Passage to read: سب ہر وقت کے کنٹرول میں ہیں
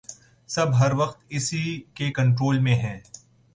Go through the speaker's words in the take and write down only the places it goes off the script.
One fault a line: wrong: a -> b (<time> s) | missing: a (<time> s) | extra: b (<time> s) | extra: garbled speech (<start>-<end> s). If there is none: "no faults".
extra: اسی (1.3 s)